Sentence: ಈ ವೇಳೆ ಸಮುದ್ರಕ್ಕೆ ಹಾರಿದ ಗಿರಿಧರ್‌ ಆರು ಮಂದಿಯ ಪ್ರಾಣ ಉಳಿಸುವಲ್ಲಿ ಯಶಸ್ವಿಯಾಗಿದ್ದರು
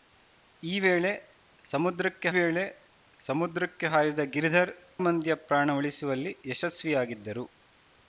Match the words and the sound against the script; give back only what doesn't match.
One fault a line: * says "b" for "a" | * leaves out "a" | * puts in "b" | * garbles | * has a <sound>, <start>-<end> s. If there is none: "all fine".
* puts in "ವೇಳೆ ಸಮುದ್ರಕ್ಕೆ"
* leaves out "ಆರು"